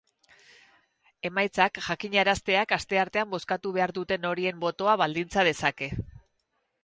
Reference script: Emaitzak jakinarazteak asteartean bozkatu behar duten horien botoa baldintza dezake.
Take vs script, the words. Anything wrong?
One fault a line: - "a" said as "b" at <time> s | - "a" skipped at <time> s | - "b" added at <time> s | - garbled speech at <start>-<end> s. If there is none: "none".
none